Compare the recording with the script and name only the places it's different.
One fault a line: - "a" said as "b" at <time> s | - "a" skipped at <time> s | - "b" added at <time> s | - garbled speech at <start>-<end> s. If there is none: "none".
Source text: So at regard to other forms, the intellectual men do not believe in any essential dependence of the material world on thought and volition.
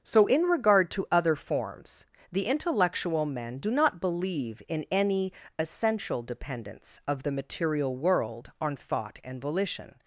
- "at" said as "in" at 0.2 s